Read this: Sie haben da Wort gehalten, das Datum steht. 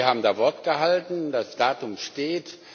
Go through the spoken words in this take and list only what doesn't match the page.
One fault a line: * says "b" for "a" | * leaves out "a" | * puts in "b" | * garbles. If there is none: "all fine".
all fine